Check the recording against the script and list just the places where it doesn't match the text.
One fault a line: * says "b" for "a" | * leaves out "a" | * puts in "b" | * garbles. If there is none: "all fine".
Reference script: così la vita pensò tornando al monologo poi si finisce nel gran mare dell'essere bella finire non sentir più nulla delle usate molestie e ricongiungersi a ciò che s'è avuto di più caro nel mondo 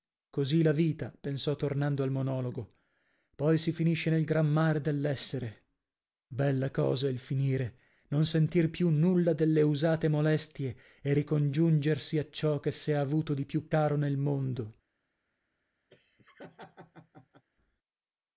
* puts in "cosa il"